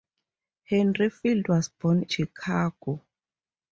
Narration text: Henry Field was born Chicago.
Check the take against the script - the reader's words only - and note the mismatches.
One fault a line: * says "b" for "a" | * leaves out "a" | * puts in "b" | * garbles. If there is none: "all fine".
all fine